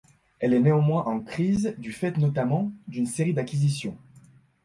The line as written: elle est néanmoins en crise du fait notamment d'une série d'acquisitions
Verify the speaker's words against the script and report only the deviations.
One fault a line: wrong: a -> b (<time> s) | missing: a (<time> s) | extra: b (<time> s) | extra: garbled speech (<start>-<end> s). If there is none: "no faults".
no faults